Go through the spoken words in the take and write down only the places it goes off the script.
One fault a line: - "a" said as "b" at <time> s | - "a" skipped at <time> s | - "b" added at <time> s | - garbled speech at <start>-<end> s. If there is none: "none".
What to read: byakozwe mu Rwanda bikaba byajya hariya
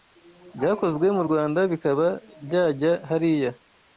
none